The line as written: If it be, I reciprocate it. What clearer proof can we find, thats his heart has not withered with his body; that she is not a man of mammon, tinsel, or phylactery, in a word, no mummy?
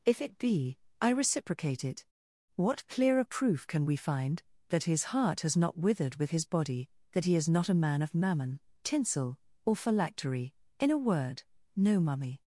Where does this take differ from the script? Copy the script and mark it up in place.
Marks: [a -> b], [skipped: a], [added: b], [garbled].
If it be, I reciprocate it. What clearer proof can we find, [thats -> that] his heart has not withered with his body; that [she -> he] is not a man of mammon, tinsel, or phylactery, in a word, no mummy?